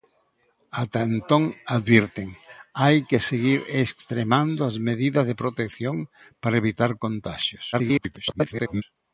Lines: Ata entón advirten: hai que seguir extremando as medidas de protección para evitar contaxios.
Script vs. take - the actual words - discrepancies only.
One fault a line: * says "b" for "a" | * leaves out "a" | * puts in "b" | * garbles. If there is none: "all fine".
* garbles